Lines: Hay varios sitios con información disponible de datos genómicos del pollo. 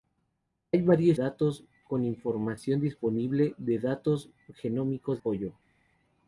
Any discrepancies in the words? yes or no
yes